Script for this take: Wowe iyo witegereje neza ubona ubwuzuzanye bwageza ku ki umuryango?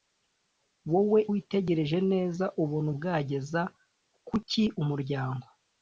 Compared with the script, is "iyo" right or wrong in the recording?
wrong